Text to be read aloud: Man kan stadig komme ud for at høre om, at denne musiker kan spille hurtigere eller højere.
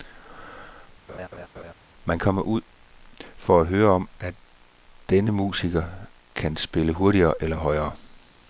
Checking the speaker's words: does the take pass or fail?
fail